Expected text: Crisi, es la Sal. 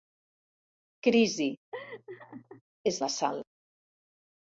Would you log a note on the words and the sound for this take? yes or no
yes